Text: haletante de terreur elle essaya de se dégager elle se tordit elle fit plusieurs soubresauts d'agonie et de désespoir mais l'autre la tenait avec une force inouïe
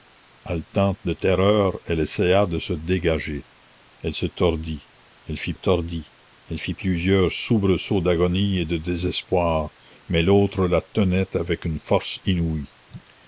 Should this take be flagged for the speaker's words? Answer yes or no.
yes